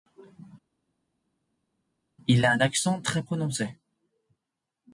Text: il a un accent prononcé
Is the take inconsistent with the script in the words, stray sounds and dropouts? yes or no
yes